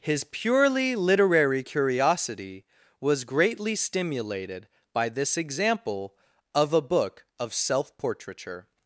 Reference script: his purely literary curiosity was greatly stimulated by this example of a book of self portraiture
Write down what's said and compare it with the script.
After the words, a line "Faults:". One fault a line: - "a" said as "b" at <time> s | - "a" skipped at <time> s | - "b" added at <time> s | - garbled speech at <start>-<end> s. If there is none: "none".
his purely literary curiosity was greatly stimulated by this example of a book of self portraiture
Faults:
none